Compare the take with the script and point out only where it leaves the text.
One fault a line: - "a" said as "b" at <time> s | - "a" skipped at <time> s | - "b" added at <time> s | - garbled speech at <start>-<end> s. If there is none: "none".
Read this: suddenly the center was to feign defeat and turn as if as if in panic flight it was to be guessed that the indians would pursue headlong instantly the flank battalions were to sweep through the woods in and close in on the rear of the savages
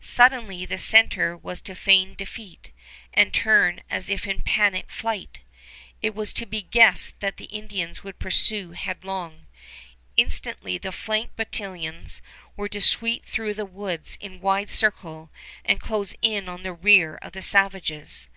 - "as if" skipped at 4.3 s
- "wide circle" added at 14.4 s